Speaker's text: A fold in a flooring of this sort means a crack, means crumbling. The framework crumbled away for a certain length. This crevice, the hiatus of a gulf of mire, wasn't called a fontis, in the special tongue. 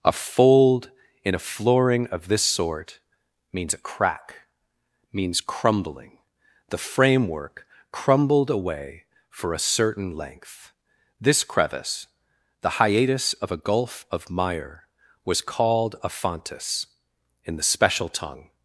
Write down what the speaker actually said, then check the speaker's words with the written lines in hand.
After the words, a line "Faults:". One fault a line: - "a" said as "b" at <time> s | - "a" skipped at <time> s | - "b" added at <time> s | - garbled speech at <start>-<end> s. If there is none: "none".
A fold in a flooring of this sort means a crack, means crumbling. The framework crumbled away for a certain length. This crevice, the hiatus of a gulf of mire, was called a fontis, in the special tongue.
Faults:
- "wasn't" said as "was" at 15.2 s